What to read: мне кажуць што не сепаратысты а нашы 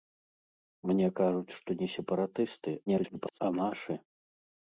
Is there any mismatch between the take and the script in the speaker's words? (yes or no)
yes